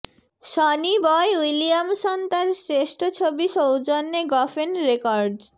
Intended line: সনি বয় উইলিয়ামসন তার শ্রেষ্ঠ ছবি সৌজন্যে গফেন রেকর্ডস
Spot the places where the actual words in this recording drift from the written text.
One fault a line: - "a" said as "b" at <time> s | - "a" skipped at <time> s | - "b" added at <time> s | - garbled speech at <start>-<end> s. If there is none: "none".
none